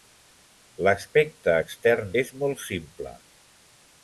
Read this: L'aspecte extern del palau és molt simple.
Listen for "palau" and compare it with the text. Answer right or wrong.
wrong